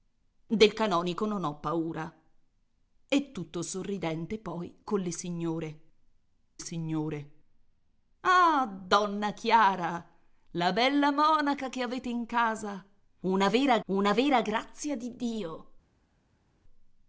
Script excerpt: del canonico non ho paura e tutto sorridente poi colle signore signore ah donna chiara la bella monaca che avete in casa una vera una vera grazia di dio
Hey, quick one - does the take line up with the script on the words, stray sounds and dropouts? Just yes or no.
yes